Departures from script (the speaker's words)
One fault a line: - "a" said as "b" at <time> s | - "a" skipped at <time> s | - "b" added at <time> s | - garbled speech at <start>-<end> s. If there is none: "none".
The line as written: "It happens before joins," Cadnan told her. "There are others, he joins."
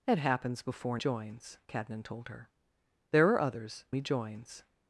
none